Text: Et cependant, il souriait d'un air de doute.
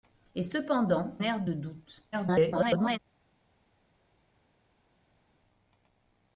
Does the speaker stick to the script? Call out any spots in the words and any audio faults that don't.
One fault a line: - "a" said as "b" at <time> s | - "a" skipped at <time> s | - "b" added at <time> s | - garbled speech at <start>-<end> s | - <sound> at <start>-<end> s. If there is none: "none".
- "il souriait d'un" skipped at 1.1 s
- garbled speech at 2.1-3.0 s